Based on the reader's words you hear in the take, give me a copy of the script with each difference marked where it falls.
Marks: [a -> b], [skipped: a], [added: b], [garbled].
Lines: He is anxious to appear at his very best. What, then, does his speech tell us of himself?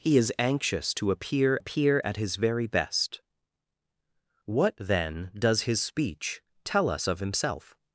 He is anxious to appear [added: appear] at his very best. What, then, does his speech tell us of himself?